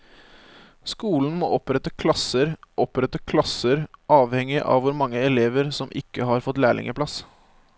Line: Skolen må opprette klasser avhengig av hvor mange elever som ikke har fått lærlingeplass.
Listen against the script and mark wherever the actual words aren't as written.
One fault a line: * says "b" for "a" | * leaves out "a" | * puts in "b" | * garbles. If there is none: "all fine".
* puts in "opprette klasser"